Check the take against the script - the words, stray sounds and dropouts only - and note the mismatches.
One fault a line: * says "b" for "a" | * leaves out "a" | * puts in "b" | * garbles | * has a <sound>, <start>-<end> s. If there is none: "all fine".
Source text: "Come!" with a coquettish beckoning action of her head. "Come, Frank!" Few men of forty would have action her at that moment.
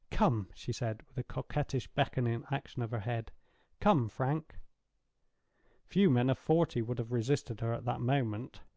* puts in "she said"
* says "resisted" for "action"